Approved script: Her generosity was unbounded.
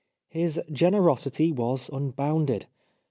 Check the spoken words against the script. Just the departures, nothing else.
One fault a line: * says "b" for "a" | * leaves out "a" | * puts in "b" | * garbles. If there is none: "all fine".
* says "His" for "Her"